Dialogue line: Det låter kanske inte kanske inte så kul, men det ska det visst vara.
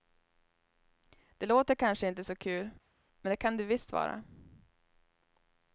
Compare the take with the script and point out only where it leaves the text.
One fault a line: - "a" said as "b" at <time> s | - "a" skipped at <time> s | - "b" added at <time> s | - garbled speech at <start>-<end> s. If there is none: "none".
- "kanske inte" skipped at 2.2 s
- "ska" said as "kan" at 3.4 s